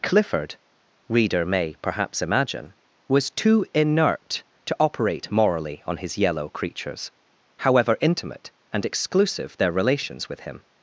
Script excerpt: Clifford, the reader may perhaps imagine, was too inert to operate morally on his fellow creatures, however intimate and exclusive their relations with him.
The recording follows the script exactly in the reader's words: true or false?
false